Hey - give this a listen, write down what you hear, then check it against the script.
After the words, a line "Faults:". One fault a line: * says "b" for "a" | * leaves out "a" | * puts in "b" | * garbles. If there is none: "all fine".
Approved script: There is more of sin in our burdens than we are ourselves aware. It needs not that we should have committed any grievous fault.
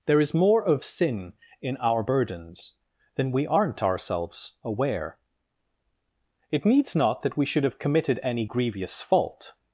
There is more of sin in our burdens than we aren't ourselves aware. It needs not that we should have committed any grievous fault.
Faults:
* says "aren't" for "are"